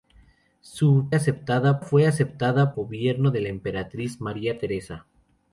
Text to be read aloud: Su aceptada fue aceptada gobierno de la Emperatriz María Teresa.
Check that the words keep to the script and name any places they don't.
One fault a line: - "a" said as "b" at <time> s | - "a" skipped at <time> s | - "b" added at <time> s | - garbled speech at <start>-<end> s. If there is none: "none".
none